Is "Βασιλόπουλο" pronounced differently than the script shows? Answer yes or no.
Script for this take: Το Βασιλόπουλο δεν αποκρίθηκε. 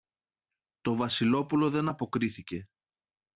no